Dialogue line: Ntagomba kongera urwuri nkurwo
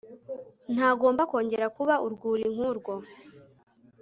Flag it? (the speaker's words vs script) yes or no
yes